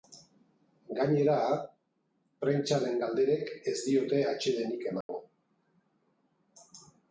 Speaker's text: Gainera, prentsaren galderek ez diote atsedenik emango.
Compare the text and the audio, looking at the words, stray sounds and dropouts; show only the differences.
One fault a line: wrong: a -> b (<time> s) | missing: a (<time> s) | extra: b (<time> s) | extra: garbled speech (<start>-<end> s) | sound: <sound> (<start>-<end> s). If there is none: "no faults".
sound: dropout (5.0-5.1 s)